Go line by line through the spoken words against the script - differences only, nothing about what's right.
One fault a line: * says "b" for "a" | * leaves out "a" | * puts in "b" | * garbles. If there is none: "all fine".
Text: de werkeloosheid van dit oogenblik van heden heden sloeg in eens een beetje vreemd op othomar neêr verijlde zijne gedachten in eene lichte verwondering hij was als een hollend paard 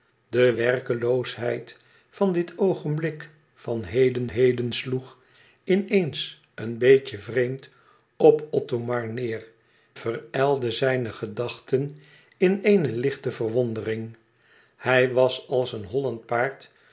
all fine